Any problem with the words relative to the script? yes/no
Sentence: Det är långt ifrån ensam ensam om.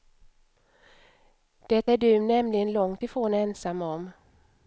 yes